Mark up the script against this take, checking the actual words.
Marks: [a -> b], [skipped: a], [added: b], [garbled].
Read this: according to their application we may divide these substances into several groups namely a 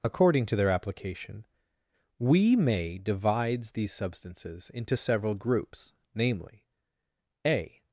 according to their application we may [divide -> divides] these substances into several groups namely a